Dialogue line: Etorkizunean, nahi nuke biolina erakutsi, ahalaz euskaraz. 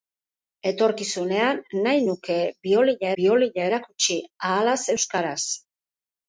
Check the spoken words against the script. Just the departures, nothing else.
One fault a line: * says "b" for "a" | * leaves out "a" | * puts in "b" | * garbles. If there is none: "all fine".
* puts in "biolina"